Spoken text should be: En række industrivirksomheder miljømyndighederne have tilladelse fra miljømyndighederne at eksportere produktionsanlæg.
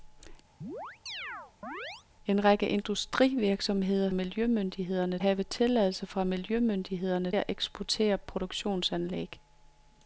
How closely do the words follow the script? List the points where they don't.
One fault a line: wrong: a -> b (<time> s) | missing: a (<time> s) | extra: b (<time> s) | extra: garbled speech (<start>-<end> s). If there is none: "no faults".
no faults